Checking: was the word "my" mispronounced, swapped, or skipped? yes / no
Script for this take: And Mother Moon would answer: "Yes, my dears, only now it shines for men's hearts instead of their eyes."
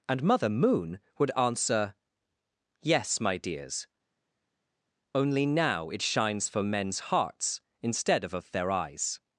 no